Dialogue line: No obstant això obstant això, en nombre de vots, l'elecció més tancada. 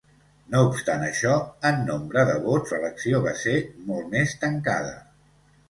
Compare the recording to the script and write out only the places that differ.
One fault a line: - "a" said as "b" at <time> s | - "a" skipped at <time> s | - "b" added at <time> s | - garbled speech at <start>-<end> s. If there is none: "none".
- "obstant això" skipped at 1.3 s
- "va ser molt" added at 3.3 s